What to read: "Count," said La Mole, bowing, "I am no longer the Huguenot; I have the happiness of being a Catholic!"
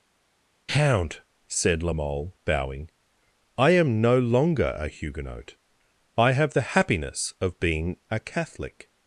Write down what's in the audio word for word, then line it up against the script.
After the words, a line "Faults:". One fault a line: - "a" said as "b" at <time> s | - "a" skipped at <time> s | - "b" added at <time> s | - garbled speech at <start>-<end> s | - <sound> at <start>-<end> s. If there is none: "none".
"Count," said La Mole, bowing, "I am no longer a Huguenot; I have the happiness of being a Catholic!"
Faults:
- "the" said as "a" at 4.8 s